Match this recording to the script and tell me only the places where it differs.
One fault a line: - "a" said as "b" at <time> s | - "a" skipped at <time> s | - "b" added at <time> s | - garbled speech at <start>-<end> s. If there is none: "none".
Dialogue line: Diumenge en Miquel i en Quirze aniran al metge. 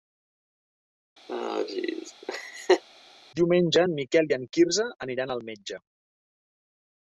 none